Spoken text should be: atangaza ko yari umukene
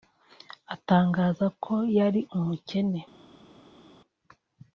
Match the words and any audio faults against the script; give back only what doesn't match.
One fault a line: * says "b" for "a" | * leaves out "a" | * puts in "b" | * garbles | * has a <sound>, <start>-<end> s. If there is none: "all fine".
all fine